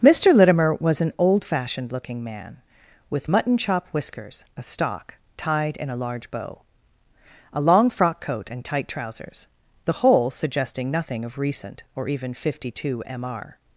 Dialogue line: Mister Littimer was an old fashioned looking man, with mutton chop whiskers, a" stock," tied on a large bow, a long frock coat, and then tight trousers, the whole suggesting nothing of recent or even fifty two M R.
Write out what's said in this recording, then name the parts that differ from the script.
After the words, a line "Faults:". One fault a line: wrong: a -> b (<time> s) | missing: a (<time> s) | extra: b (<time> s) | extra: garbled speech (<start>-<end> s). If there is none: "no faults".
Mister Littimer was an old fashioned looking man, with mutton chop whiskers, a" stock," tied in a large bow, a long frock coat, and tight trousers, the whole suggesting nothing of recent or even fifty two M R.
Faults:
wrong: on -> in (5.8 s)
missing: then (8.6 s)